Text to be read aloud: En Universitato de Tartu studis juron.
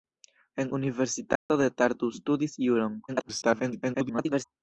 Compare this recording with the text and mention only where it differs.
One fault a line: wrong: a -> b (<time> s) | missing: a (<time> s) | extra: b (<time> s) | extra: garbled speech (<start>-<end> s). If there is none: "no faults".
extra: garbled speech (3.1-4.4 s)